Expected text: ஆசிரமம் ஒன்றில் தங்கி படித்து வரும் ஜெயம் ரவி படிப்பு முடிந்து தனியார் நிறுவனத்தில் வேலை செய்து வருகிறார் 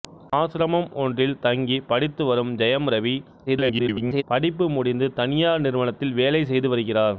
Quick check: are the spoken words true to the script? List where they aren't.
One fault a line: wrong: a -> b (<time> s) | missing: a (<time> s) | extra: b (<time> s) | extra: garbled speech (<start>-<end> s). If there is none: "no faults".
extra: garbled speech (3.5-4.2 s)